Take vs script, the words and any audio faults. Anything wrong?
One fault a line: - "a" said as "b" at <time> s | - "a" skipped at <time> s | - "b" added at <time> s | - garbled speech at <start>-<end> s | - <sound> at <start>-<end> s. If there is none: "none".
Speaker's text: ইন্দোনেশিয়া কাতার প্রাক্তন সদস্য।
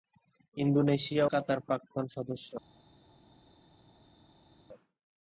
none